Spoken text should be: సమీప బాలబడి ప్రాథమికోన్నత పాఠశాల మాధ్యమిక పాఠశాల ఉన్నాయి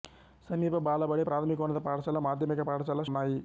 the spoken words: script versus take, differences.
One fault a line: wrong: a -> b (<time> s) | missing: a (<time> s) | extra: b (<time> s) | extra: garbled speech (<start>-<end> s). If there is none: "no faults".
no faults